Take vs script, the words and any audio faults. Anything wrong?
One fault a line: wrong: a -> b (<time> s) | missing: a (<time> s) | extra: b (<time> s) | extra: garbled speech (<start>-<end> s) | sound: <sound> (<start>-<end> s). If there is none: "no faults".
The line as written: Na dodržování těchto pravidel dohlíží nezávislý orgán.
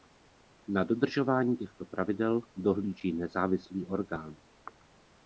no faults